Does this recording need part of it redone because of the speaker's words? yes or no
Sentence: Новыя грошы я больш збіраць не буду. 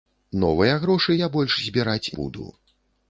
yes